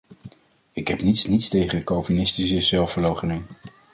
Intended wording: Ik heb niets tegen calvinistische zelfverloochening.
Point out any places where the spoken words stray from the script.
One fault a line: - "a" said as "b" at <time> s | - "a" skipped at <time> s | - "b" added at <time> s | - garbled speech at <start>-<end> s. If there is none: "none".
- "niets" added at 1.3 s